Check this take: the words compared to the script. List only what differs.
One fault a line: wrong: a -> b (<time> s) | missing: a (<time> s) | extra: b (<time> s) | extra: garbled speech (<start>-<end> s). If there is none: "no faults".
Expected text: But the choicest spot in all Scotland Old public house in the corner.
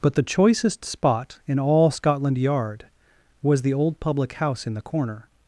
extra: Yard was the (2.4 s)